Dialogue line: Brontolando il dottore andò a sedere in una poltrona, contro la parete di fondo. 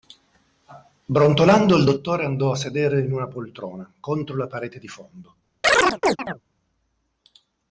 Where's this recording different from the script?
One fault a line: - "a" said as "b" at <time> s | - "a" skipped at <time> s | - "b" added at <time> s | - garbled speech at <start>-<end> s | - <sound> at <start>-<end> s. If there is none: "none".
- chirp at 5.6-6.4 s